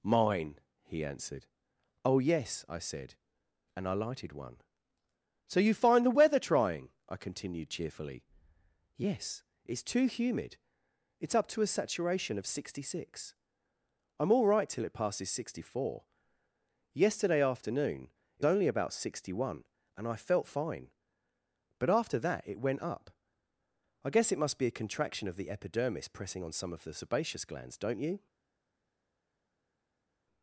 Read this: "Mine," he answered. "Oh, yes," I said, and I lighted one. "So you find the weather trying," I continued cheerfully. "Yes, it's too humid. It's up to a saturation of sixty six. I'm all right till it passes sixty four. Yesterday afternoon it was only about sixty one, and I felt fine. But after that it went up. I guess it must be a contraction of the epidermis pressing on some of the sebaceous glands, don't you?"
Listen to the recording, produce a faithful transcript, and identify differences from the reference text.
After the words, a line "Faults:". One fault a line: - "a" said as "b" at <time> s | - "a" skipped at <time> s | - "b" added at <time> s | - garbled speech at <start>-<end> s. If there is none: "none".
"Mine," he answered. "Oh, yes," I said, and I lighted one. "So you find the weather trying," I continued cheerfully. "Yes, it's too humid. It's up to a saturation of sixty six. I'm all right till it passes sixty four. Yesterday afternoon it only about sixty one, and I felt fine. But after that it went up. I guess it must be a contraction of the epidermis pressing on some of the sebaceous glands, don't you?"
Faults:
- "was" skipped at 18.5 s